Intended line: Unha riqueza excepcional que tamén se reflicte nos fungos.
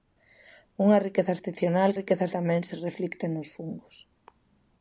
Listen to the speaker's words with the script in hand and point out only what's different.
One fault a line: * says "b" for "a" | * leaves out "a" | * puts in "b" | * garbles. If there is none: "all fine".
* says "riqueza" for "que"